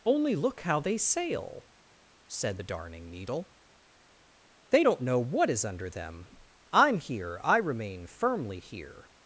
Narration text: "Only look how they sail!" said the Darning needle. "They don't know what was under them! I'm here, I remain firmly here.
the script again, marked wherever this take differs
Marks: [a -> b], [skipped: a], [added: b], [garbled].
"Only look how they sail!" said the Darning needle. "They don't know what [was -> is] under them! I'm here, I remain firmly here.